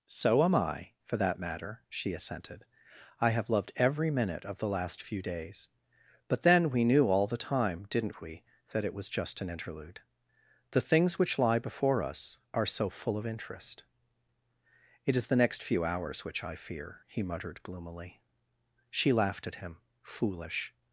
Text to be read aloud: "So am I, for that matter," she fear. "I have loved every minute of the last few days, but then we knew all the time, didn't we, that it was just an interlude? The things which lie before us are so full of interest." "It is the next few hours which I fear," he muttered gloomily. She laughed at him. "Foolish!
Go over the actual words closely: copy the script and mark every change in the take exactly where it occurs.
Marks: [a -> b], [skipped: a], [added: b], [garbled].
"So am I, for that matter," she [fear. -> assented] "I have loved every minute of the last few days, but then we knew all the time, didn't we, that it was just an interlude? The things which lie before us are so full of interest." "It is the next few hours which I fear," he muttered gloomily. She laughed at him. "Foolish!